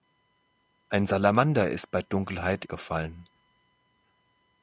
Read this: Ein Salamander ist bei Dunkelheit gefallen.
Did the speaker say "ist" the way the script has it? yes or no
yes